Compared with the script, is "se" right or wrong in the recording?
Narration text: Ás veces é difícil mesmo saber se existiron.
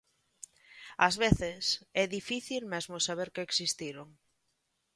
wrong